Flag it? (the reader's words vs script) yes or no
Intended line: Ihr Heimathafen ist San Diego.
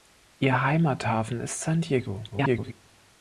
yes